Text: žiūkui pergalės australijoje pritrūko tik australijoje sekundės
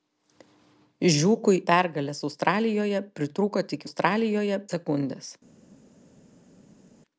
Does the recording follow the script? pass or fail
pass